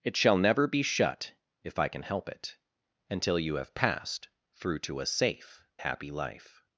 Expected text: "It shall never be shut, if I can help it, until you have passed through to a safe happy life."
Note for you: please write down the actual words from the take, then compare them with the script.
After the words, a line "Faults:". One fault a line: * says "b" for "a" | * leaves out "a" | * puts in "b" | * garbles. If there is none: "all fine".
"It shall never be shut, if I can help it, until you have passed through to a safe happy life."
Faults:
all fine